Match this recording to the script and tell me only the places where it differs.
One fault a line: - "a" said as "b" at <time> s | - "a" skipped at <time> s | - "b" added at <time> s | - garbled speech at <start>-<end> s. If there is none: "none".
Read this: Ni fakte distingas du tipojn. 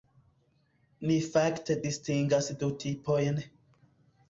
none